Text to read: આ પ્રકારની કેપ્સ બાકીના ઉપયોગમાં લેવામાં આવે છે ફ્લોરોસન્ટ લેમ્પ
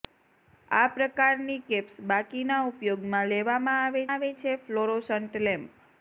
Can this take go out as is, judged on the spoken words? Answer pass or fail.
fail